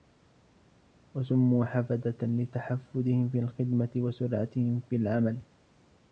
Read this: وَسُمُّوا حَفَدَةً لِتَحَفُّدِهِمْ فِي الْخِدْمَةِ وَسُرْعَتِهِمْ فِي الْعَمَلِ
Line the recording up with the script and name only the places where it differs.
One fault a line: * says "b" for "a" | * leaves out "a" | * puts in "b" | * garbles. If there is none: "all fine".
all fine